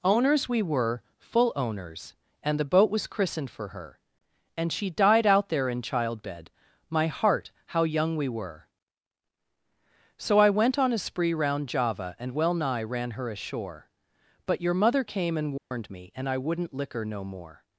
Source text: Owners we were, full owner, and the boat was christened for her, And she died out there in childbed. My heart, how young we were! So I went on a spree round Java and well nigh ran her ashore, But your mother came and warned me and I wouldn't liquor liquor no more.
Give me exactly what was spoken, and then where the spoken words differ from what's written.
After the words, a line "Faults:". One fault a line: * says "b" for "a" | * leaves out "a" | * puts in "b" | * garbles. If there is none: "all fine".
Owners we were, full owners, and the boat was christened for her, And she died out there in childbed. My heart, how young we were! So I went on a spree round Java and well nigh ran her ashore, But your mother came and warned me and I wouldn't liquor no more.
Faults:
* says "owners" for "owner"
* leaves out "liquor"